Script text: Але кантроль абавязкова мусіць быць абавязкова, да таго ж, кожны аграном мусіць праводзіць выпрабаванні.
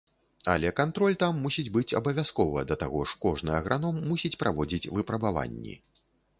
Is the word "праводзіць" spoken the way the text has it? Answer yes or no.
yes